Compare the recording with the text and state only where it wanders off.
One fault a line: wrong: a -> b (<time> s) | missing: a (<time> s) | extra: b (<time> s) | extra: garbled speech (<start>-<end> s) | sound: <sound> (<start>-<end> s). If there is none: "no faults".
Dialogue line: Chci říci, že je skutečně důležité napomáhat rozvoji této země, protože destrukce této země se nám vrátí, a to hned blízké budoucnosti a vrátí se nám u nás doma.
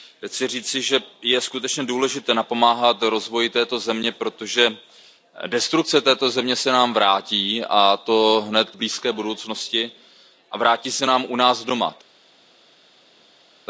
no faults